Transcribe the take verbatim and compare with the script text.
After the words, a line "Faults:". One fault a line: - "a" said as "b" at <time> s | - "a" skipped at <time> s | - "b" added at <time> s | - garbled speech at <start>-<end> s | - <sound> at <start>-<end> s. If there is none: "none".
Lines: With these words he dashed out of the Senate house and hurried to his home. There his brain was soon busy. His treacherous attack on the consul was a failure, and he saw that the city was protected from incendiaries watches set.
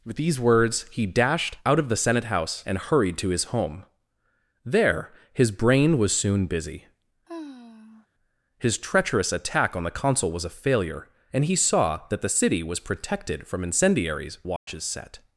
With these words he dashed out of the Senate house and hurried to his home. There his brain was soon busy. His treacherous attack on the consul was a failure, and he saw that the city was protected from incendiaries watches set.
Faults:
- sigh at 7.3-8.1 s
- dropout at 14.6-14.7 s